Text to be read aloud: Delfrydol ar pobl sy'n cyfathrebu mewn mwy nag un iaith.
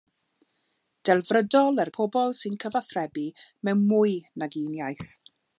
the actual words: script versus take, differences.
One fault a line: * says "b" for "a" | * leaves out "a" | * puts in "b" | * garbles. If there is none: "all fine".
all fine